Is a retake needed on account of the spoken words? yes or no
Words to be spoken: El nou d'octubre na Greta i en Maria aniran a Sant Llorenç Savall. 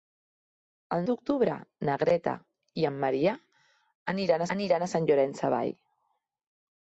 yes